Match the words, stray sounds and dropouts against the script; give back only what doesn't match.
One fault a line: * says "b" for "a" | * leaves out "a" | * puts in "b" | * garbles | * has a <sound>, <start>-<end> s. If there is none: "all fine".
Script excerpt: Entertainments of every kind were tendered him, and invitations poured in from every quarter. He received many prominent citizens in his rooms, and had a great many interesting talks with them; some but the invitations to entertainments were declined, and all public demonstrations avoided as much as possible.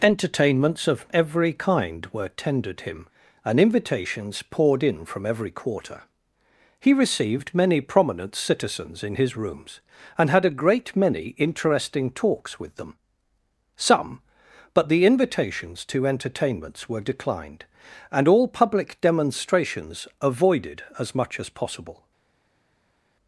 all fine